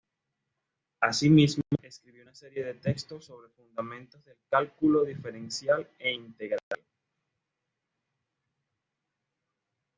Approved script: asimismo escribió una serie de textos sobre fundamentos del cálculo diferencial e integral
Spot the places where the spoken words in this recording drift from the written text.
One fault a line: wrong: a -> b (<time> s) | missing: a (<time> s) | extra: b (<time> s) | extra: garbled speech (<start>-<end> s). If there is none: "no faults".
no faults